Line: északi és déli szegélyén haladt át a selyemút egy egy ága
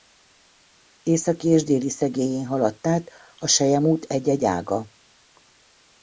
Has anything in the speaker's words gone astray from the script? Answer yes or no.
no